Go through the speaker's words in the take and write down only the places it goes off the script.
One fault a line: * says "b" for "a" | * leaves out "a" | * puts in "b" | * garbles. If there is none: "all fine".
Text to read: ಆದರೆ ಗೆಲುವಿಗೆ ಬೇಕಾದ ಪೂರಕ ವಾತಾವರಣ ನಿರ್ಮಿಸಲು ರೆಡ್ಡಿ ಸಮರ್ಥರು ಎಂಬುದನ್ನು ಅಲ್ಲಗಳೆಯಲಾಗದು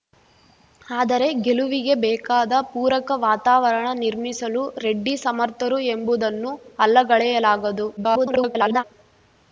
* garbles